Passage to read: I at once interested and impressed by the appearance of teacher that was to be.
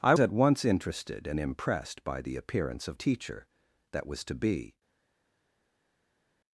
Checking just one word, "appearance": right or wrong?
right